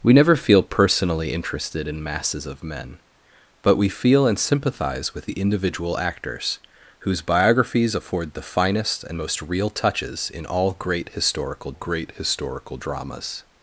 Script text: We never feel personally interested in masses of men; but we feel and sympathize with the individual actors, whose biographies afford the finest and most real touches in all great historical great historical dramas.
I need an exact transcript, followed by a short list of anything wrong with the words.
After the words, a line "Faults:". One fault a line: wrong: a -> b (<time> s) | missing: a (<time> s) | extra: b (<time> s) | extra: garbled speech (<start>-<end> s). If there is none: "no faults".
We never feel personally interested in masses of men; but we feel and sympathize with the individual actors, whose biographies afford the finest and most real touches in all great historical great historical dramas.
Faults:
no faults